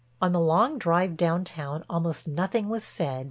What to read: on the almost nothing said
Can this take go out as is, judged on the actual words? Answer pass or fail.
fail